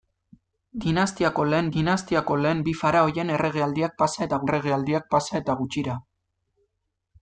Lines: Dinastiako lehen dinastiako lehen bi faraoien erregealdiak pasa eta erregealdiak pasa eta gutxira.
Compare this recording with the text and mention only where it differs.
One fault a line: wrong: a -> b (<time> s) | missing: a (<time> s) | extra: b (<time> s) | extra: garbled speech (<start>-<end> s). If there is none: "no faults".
no faults